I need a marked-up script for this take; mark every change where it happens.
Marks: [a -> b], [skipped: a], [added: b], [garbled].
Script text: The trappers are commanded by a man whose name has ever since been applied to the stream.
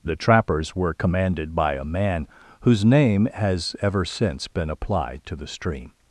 The trappers [are -> were] commanded by a man whose name has ever since been applied to the stream.